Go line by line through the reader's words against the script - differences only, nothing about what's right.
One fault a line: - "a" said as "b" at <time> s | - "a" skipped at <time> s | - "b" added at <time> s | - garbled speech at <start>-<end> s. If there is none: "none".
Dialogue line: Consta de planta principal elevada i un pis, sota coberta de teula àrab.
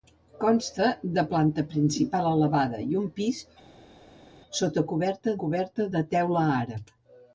- "coberta" added at 5.4 s